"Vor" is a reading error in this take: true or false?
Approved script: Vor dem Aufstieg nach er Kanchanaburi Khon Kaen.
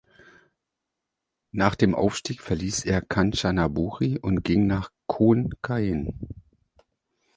true